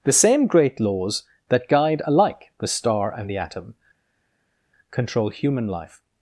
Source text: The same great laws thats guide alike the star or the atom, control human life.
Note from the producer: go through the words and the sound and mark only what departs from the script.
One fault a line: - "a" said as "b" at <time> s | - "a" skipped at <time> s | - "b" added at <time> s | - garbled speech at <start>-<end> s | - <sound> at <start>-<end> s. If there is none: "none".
- "thats" said as "that" at 1.5 s
- "or" said as "and" at 3.1 s